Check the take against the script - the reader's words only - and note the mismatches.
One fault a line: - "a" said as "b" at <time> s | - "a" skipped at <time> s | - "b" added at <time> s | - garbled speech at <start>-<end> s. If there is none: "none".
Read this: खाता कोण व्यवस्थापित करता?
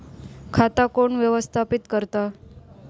none